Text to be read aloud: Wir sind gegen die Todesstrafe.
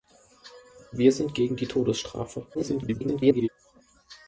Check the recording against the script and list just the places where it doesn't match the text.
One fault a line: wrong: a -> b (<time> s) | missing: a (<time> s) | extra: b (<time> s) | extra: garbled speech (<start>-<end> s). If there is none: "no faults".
extra: garbled speech (2.5-3.5 s)